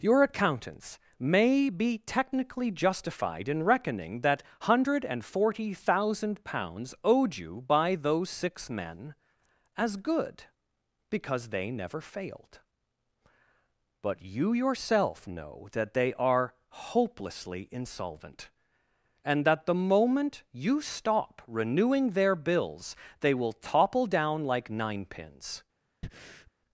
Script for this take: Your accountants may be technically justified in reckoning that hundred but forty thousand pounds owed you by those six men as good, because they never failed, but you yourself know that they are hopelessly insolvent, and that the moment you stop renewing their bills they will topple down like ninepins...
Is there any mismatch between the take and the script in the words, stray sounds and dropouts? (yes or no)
yes